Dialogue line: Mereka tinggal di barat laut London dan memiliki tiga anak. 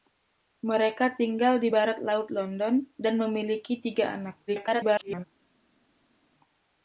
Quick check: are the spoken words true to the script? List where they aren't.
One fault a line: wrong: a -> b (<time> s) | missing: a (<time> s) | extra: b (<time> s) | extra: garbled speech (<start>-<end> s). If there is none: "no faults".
extra: garbled speech (4.5-5.2 s)